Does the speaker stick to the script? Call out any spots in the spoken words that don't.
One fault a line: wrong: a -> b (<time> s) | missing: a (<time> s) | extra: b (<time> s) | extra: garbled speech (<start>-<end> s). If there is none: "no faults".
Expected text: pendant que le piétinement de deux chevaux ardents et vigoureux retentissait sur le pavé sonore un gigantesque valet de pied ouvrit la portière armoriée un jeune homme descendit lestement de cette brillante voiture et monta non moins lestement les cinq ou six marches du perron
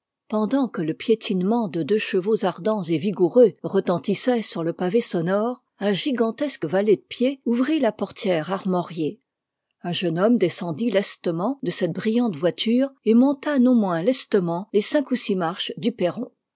no faults